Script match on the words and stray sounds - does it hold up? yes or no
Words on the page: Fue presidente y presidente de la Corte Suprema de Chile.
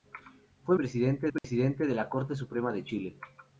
no